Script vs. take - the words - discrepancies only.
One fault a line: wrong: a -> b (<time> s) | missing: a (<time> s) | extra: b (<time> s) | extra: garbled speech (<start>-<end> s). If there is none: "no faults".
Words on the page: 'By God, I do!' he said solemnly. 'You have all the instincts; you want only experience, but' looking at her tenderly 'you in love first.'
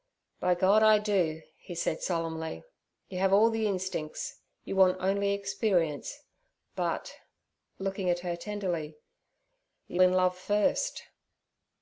no faults